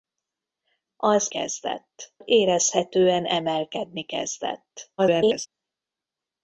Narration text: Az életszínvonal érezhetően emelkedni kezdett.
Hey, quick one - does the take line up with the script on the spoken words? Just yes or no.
no